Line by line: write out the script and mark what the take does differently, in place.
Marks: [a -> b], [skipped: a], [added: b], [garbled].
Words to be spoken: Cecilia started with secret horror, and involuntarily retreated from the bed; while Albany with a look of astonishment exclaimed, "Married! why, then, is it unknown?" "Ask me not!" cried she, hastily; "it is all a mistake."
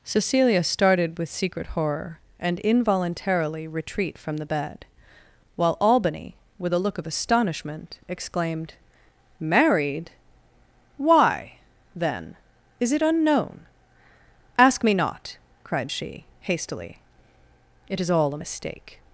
Cecilia started with secret horror, and involuntarily [retreated -> retreat] from the bed; while Albany with a look of astonishment exclaimed, "Married! why, then, is it unknown?" "Ask me not!" cried she, hastily; "it is all a mistake."